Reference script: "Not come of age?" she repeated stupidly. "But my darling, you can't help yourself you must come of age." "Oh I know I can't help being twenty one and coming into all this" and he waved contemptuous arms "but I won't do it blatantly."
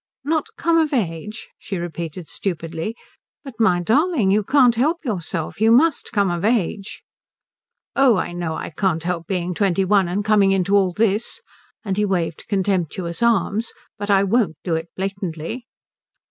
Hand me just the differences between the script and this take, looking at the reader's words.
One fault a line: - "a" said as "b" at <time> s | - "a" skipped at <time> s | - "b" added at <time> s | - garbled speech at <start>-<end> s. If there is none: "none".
none